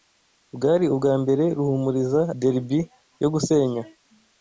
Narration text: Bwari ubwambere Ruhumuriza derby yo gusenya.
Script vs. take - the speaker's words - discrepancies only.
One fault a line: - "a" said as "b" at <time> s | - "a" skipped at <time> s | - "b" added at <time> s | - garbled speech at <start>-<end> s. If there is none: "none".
none